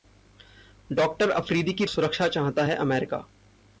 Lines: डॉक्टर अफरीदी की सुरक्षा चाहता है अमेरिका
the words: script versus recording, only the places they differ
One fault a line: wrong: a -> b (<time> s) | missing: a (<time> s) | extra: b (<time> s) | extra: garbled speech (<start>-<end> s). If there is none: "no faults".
no faults